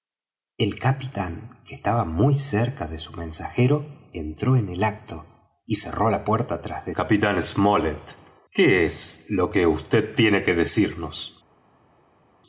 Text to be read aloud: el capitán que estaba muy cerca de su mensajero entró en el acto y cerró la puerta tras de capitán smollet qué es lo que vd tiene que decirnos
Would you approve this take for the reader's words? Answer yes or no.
yes